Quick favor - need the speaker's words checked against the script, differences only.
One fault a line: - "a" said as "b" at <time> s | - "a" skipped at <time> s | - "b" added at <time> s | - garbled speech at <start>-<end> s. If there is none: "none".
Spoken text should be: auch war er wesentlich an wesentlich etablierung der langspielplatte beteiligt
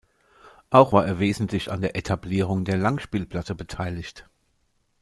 - "wesentlich" said as "der" at 1.8 s